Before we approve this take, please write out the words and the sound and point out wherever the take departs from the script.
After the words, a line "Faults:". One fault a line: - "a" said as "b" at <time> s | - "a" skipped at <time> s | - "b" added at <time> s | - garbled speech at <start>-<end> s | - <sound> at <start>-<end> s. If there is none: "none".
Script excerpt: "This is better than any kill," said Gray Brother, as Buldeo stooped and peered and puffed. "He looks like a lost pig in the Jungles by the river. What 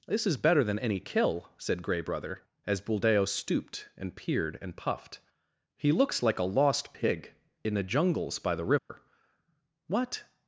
"This is better than any kill," said Gray Brother, as Buldeo stooped and peered and puffed. "He looks like a lost pig in the Jungles by the river. What
Faults:
- dropout at 8.8-8.9 s